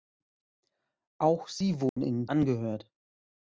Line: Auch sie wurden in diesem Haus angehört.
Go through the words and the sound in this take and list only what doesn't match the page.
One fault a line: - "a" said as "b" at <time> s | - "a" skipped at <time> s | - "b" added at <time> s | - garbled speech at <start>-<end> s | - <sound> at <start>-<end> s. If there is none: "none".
- dropout at 1.9-2.0 s
- "diesem Haus" skipped at 2.2 s